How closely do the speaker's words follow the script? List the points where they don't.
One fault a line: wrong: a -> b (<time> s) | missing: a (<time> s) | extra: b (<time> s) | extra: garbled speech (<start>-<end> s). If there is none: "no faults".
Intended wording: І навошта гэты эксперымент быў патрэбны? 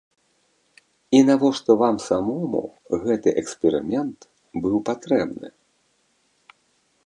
extra: вам самому (1.8 s)